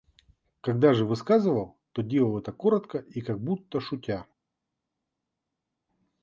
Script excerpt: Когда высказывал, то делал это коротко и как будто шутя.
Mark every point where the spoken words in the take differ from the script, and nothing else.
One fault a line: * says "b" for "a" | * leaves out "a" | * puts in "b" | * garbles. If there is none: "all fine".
* puts in "же"